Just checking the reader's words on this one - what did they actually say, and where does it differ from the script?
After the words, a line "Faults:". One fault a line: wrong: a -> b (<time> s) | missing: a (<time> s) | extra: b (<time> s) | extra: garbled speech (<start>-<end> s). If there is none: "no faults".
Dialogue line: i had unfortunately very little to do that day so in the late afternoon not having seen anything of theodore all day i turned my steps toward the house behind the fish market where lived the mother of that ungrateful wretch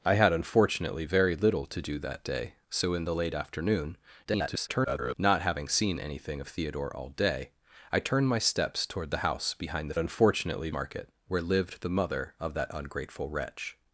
i had unfortunately very little to do that day so in the late afternoon [garbled] not having seen anything of theodore all day i turned my steps toward the house behind the unfortunately market where lived the mother of that ungrateful wretch
Faults:
extra: garbled speech (4.2-5.1 s)
wrong: fish -> unfortunately (10.0 s)